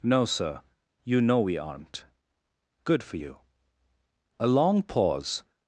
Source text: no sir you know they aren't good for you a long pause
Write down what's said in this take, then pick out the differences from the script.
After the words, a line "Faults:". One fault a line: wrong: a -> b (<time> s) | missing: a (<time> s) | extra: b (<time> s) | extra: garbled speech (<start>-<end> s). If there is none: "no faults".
no sir you know we aren't good for you a long pause
Faults:
wrong: they -> we (1.4 s)